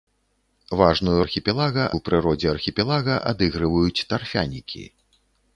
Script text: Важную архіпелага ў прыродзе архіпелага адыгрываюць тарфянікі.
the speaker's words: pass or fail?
pass